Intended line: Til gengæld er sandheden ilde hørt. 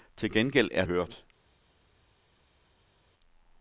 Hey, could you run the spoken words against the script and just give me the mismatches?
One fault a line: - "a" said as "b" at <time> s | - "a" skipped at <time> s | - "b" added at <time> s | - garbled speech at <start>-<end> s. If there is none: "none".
- "sandheden ilde" skipped at 0.8 s